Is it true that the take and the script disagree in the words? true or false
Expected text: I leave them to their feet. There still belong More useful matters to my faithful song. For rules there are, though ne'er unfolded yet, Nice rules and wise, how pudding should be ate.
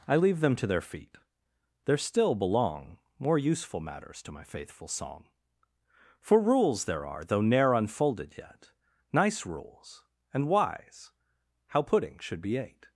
false